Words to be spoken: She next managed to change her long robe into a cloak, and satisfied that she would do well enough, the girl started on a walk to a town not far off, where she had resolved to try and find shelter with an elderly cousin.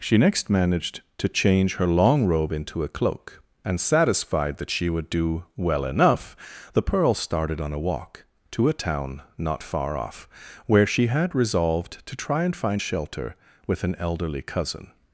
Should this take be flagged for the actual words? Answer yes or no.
yes